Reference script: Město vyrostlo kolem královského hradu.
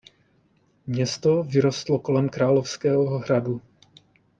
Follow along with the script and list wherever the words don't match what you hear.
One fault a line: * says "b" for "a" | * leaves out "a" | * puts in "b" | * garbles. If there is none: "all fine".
all fine